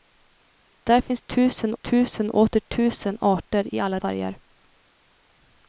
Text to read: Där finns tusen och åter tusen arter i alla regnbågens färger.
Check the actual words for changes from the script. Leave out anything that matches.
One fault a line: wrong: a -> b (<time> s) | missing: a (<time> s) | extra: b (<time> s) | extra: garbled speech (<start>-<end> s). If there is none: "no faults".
extra: tusen (1.8 s)
missing: regnbågens (4.0 s)